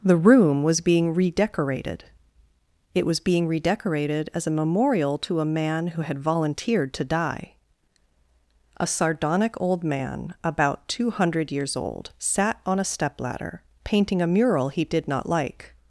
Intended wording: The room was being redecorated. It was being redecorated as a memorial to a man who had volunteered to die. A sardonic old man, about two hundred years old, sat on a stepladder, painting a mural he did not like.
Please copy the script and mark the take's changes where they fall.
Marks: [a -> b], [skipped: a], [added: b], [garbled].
The room was being redecorated. It was being redecorated as a memorial to a man who had volunteered to die. A sardonic old man, about two hundred years old, sat on a stepladder, painting a mural he did not like.